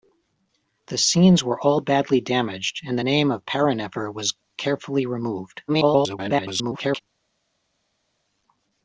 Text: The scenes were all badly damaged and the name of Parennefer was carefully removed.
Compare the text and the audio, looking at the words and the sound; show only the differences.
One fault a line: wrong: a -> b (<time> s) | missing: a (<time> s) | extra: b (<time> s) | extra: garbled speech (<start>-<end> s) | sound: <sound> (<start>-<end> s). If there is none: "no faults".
extra: garbled speech (5.7-7.0 s)